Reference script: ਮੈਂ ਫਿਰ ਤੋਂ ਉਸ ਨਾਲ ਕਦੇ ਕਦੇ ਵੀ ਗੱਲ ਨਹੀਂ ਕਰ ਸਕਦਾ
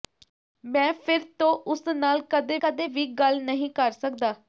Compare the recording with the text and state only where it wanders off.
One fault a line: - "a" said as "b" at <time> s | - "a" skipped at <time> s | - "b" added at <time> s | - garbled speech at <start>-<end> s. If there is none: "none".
none